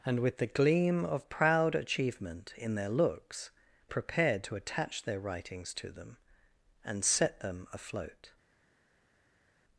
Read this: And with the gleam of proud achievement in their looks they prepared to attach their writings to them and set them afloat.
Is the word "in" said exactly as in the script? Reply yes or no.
yes